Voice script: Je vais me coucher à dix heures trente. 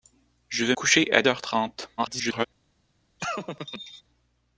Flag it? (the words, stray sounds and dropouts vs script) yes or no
yes